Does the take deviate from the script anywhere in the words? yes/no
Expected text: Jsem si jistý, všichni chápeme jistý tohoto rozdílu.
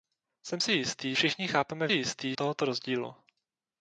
no